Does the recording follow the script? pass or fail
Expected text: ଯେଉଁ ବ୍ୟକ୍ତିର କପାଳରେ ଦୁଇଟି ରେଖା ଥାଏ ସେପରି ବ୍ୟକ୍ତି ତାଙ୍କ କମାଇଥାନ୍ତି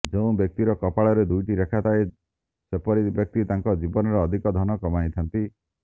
fail